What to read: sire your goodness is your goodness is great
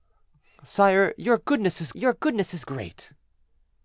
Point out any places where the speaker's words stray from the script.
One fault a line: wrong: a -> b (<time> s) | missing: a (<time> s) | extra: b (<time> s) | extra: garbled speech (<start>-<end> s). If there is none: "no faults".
no faults